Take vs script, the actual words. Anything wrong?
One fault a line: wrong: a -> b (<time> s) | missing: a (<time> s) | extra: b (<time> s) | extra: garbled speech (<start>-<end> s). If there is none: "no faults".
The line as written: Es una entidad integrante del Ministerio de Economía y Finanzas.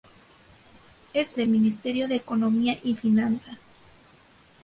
missing: una entidad integrante (1.4 s)